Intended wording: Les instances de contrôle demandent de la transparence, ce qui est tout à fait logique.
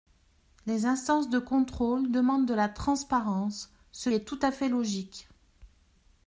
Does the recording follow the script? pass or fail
fail